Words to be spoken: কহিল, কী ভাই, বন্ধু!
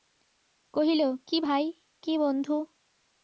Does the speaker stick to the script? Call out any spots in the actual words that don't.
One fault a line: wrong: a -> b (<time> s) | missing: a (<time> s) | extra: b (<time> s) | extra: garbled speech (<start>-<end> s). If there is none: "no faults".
extra: কী (2.0 s)